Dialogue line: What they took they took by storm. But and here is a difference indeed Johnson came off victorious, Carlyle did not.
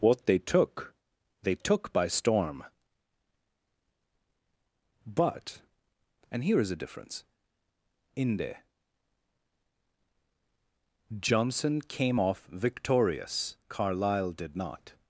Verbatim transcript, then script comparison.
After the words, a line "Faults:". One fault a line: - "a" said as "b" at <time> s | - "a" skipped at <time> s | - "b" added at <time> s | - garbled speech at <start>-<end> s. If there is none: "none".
What they took they took by storm. But and here is a difference inde Johnson came off victorious, Carlyle did not.
Faults:
- "indeed" said as "inde" at 8.2 s